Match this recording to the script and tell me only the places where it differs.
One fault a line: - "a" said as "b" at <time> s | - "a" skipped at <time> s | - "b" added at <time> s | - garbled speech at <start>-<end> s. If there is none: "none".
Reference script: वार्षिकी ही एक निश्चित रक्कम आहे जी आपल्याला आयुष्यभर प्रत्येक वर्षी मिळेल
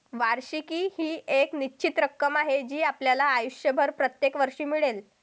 none